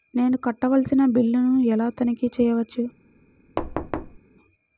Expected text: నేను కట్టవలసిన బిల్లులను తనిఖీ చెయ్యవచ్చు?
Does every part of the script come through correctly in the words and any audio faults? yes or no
no